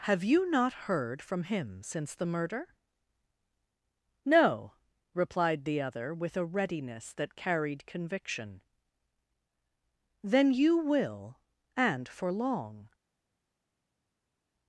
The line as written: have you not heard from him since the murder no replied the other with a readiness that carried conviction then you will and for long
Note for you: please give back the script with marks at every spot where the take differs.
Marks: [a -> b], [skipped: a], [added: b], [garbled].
have you not heard from him since the murder no replied the other with a readiness that carried conviction then you will and for long